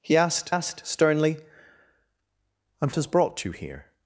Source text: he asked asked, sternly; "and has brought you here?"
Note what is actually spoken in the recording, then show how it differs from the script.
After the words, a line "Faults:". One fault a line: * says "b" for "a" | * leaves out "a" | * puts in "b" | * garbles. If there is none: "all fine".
he asked asked, sternly; "and has brought you here?"
Faults:
all fine